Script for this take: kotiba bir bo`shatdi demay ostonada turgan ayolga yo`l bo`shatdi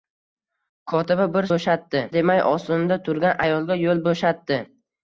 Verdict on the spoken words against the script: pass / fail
pass